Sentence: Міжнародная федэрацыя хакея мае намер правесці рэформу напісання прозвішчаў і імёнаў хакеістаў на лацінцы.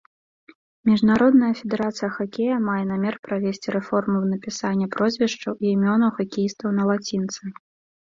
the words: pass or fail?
pass